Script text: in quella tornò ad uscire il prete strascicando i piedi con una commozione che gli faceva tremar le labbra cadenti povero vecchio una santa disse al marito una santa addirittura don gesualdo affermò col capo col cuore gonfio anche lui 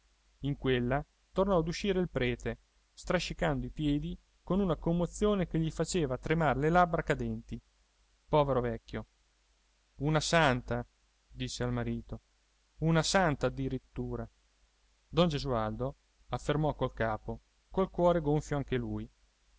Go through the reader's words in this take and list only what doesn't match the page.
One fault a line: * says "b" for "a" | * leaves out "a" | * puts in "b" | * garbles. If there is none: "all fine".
all fine